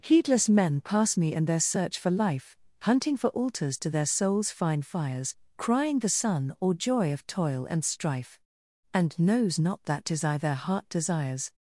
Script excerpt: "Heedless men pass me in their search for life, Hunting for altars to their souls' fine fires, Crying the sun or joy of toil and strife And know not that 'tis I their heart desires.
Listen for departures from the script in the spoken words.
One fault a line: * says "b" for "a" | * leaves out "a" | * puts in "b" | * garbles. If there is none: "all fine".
* says "knows" for "know"